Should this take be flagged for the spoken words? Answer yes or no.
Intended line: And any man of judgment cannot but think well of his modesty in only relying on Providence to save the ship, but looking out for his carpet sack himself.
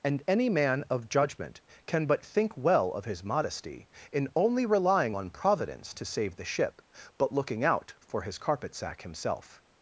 yes